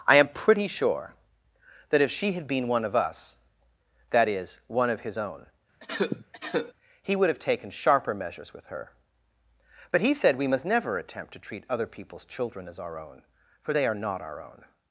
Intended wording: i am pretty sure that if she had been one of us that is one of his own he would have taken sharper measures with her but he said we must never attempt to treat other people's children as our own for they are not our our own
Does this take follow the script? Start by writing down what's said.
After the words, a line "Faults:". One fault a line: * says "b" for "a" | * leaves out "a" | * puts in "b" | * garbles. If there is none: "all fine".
i am pretty sure that if she had been one of us that is one of his own he would have taken sharper measures with her but he said we must never attempt to treat other people's children as our own for they are not our own
Faults:
* leaves out "our"